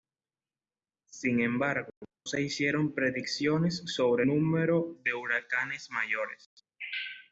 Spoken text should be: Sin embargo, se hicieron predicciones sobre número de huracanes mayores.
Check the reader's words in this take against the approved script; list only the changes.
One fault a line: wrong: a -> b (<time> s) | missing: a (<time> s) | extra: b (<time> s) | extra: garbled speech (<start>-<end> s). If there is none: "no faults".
no faults